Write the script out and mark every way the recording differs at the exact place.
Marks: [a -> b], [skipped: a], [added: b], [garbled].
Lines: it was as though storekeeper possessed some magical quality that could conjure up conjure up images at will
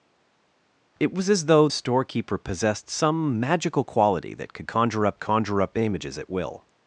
it was as though storekeeper possessed some magical quality that could conjure up conjure up images at will